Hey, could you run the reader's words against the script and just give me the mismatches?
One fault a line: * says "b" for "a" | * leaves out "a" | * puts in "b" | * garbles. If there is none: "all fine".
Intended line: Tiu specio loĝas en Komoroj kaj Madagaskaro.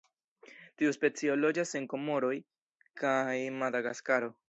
all fine